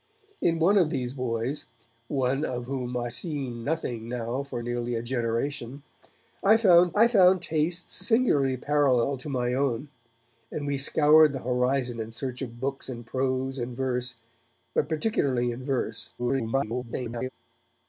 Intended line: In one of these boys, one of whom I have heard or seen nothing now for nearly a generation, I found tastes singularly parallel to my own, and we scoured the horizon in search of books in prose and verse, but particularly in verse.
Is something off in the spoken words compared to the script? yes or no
yes